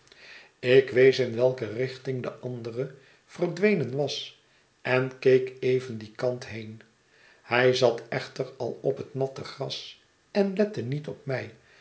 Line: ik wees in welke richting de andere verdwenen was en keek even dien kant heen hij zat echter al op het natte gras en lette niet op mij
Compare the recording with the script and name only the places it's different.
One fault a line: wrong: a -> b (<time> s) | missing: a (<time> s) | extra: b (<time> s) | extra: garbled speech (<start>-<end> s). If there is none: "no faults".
no faults